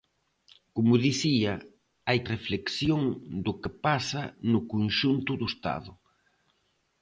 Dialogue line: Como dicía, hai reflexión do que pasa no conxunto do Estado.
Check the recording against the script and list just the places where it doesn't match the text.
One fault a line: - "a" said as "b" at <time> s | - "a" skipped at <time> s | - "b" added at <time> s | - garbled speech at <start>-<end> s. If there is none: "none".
none